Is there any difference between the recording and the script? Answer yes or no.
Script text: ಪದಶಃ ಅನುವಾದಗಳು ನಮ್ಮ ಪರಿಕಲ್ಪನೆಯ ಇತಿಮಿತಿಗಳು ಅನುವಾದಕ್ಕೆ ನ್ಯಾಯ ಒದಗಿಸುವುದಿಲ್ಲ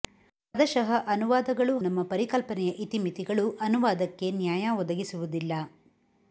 no